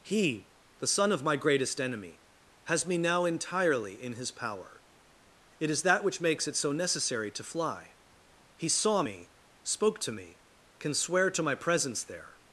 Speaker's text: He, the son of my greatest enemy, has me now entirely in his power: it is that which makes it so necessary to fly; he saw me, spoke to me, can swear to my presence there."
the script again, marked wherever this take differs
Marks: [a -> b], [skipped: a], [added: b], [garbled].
He, the son of my greatest enemy, has me now entirely in his power: it is that which makes it so necessary to fly; he saw me, spoke to me, can swear to my presence there."